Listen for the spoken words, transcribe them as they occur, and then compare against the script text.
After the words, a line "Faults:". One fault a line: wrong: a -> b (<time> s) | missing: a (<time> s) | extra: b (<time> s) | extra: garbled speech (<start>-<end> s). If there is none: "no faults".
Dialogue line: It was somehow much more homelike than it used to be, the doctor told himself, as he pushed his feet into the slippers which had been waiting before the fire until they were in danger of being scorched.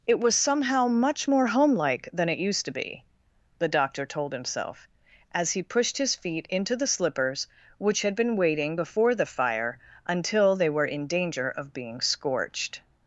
It was somehow much more homelike than it used to be, the doctor told himself, as he pushed his feet into the slippers which had been waiting before the fire until they were in danger of being scorched.
Faults:
no faults